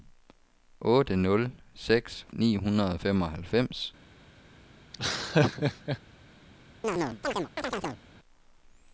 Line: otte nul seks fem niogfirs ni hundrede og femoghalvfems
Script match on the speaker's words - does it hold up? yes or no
no